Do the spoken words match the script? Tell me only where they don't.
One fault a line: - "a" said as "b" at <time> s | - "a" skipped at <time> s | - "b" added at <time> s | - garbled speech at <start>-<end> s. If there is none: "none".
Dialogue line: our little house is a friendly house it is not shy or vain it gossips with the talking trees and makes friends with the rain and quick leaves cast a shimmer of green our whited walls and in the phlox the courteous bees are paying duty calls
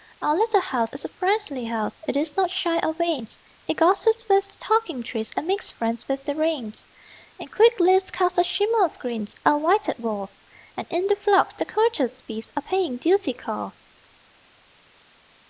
none